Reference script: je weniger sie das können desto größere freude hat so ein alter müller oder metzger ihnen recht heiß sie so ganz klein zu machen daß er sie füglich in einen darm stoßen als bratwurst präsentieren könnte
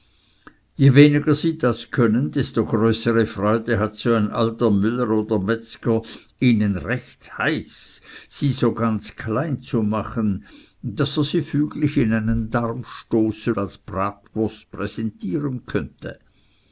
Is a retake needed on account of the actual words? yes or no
no